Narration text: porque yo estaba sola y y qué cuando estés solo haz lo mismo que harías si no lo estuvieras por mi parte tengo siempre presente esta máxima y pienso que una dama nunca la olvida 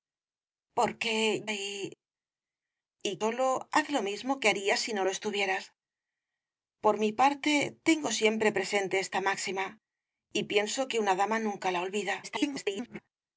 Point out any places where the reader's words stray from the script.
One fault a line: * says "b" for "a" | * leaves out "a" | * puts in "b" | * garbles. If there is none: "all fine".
* leaves out "yo estaba sola"
* leaves out "qué cuando estés"
* garbles